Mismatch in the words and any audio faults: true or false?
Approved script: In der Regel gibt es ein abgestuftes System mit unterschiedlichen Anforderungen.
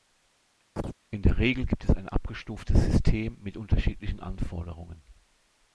true